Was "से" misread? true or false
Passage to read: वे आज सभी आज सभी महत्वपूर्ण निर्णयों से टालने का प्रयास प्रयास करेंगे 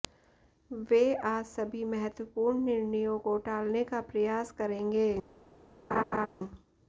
true